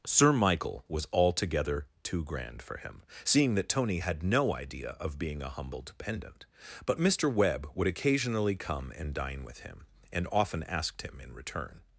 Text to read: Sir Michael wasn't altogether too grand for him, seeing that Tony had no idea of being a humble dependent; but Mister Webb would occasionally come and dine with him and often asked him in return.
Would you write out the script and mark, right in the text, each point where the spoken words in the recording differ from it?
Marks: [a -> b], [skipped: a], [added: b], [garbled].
Sir Michael [wasn't -> was] altogether too grand for him, seeing that Tony had no idea of being a humble dependent; but Mister Webb would occasionally come and dine with him and often asked him in return.